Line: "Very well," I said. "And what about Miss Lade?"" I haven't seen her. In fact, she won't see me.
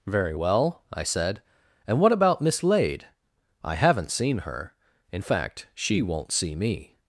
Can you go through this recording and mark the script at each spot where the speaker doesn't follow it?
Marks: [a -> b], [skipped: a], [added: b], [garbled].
"Very well," I said. "And what about Miss Lade?"" I haven't seen her. In fact, she won't see me.